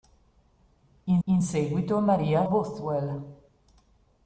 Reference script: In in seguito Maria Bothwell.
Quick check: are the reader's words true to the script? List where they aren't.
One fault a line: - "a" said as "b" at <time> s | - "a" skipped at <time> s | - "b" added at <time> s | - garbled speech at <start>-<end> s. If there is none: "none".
none